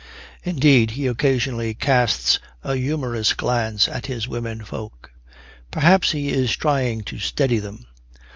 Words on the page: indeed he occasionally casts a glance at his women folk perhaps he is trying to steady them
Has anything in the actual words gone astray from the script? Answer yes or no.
yes